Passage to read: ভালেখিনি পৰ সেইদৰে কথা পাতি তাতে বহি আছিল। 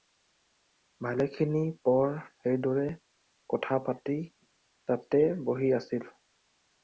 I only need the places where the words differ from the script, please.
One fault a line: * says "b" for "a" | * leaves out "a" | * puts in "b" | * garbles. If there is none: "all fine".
all fine